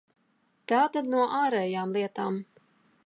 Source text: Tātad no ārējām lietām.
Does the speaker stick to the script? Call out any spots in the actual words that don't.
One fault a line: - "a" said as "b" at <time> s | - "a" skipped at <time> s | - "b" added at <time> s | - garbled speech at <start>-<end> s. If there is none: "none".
none